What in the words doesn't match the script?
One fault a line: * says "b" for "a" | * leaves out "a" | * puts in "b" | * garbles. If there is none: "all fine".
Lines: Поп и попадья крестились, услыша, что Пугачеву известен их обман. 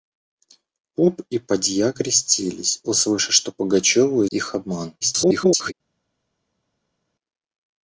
* leaves out "известен"
* garbles